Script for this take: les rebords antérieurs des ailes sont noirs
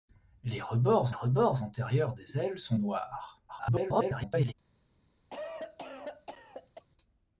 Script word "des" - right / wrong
right